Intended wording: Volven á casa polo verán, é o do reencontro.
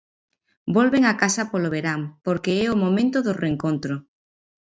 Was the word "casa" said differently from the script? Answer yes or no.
no